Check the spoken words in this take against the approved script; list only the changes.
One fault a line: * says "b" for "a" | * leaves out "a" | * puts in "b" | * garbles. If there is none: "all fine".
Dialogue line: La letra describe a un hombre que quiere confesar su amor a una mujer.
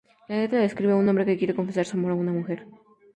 all fine